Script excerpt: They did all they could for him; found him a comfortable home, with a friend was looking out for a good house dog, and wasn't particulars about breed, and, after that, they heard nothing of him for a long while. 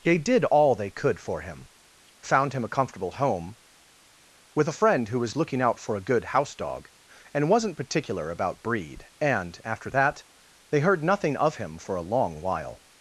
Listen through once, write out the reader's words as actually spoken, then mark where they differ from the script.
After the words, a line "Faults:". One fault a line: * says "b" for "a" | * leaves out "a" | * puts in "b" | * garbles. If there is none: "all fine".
They did all they could for him; found him a comfortable home, with a friend who was looking out for a good house dog, and wasn't particular about breed, and, after that, they heard nothing of him for a long while.
Faults:
* puts in "who"
* says "particular" for "particulars"